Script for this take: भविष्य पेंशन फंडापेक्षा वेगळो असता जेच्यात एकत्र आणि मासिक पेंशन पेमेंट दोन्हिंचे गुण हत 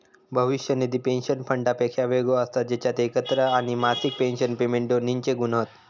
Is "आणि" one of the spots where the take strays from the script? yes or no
no